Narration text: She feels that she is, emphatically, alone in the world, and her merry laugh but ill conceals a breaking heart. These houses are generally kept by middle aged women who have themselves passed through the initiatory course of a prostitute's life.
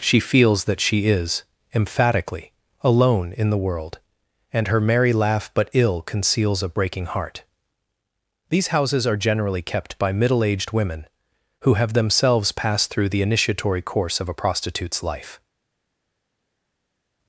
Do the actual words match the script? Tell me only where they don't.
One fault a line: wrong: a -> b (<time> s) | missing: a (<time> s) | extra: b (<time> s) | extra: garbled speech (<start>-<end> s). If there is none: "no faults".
no faults